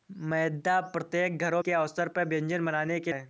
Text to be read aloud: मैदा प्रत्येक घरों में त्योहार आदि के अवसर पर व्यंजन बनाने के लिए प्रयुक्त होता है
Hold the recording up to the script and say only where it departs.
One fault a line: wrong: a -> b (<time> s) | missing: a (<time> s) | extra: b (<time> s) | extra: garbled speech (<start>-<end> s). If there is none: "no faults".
missing: में त्योहार आदि (1.6 s)
missing: लिए प्रयुक्त होता (3.1 s)